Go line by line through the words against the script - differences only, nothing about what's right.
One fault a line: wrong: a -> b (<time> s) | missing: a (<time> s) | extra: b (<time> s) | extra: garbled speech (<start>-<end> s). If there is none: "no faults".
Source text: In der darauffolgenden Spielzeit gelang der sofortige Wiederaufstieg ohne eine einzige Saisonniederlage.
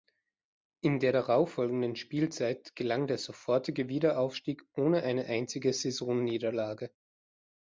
no faults